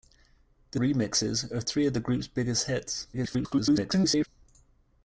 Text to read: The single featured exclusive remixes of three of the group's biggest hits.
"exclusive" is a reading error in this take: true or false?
true